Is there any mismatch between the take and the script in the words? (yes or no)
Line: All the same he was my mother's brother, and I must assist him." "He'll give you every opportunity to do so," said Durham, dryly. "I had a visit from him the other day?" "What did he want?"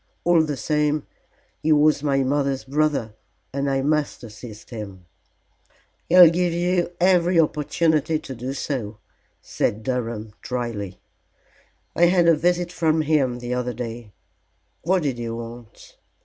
no